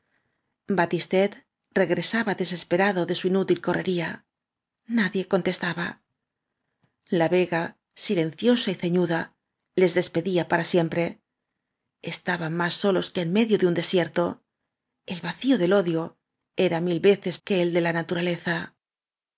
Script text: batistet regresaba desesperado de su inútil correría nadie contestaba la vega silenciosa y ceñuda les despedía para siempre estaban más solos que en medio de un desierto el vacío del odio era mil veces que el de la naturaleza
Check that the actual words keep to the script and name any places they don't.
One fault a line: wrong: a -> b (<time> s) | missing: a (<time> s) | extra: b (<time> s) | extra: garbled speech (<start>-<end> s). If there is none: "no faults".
no faults